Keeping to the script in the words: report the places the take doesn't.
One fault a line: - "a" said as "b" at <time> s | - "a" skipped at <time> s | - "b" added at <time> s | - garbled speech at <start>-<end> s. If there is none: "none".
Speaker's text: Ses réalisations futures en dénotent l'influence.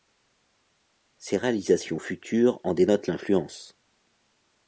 none